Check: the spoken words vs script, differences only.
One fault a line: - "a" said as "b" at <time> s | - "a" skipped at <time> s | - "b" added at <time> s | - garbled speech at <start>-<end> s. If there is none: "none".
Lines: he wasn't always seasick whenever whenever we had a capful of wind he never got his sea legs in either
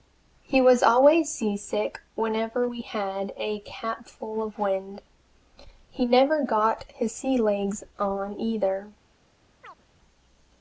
- "wasn't" said as "was" at 0.6 s
- "whenever" skipped at 2.7 s
- "in" said as "on" at 8.0 s